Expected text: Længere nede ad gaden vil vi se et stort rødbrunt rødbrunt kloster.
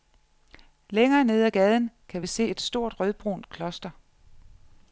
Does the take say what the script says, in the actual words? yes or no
no